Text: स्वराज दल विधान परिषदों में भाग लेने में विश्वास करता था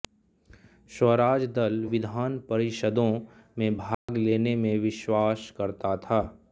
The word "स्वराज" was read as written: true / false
true